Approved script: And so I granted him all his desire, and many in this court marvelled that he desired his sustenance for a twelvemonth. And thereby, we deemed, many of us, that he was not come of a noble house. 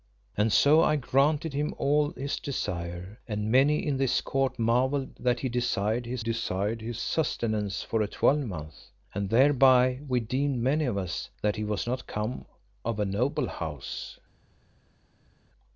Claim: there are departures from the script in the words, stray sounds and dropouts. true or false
true